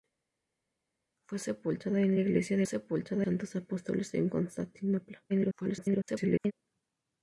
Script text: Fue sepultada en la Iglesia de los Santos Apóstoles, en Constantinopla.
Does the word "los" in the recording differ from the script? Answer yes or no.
yes